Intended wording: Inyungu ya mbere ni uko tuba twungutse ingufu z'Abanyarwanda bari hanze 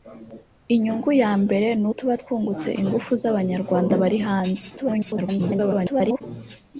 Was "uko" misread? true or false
true